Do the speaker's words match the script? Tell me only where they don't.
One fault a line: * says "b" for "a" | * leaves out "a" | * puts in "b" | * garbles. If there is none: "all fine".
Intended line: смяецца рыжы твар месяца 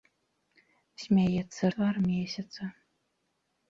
* leaves out "рыжы"